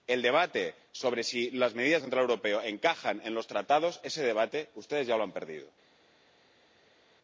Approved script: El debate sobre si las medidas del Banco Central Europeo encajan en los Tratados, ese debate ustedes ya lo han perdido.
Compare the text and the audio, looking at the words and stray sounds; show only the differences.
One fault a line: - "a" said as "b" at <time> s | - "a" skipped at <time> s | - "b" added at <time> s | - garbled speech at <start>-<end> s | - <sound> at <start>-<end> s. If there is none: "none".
- "del Banco" skipped at 2.0 s